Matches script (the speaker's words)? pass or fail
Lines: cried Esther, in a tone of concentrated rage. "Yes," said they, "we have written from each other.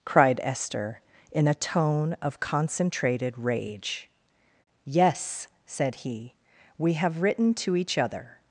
fail